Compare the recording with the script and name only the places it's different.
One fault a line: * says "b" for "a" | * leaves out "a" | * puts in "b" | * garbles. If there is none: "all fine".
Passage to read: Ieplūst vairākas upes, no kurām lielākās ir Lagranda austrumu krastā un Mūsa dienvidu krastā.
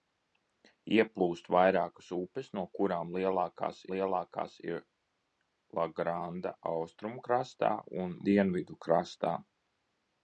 * puts in "lielākās"
* leaves out "Mūsa"